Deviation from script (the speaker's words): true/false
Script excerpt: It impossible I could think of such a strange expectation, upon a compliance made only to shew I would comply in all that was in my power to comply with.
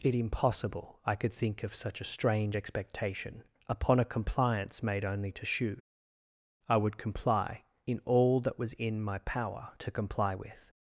false